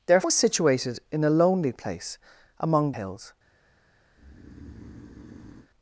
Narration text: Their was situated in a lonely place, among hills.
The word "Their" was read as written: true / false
true